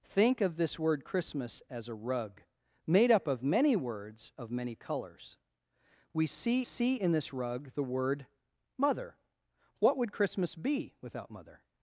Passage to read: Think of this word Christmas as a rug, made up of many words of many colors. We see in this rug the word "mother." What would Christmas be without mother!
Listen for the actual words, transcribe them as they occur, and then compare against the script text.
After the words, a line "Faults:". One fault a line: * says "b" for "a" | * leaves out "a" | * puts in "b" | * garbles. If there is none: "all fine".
Think of this word Christmas as a rug, made up of many words of many colors. We see see in this rug the word "mother." What would Christmas be without mother!
Faults:
* puts in "see"